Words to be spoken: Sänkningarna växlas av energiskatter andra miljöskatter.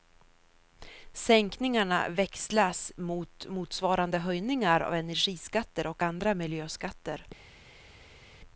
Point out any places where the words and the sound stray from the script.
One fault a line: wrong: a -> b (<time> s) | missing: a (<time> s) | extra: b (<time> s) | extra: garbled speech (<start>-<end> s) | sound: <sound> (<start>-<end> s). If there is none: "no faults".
extra: mot motsvarande höjningar (3.0 s)
extra: och (5.9 s)